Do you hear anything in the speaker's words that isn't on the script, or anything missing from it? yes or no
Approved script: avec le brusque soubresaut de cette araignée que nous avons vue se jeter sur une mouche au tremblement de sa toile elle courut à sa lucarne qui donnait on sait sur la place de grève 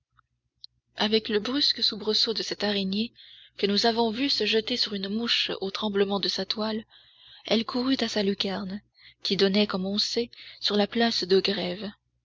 yes